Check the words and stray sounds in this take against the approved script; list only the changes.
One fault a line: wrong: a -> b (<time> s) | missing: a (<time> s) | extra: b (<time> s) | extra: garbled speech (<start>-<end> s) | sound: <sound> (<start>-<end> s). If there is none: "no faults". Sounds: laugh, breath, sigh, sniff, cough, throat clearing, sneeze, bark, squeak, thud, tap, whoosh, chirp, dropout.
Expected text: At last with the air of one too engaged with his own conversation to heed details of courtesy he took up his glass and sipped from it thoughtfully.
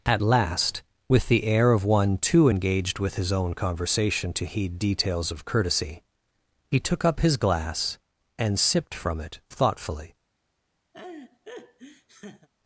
sound: laugh (10.9-12.5 s)